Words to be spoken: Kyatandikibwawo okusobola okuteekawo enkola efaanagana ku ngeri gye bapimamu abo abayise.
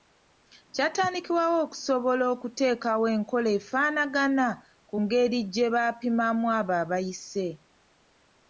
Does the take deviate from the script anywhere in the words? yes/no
no